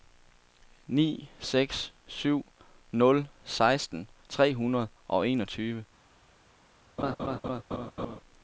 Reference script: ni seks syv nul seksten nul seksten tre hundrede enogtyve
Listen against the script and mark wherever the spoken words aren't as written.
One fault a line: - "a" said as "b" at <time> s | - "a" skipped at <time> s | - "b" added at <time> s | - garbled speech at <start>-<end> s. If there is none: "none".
- "nul seksten" skipped at 4.1 s
- "og" added at 5.1 s